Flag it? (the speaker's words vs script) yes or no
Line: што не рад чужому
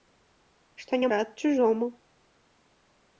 no